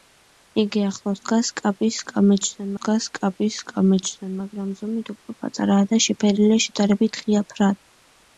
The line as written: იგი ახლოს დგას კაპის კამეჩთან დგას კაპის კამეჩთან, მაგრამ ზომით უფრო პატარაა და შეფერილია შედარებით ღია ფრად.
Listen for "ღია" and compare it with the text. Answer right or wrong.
right